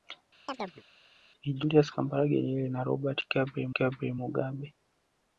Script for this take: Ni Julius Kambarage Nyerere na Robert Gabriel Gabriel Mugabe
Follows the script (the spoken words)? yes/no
yes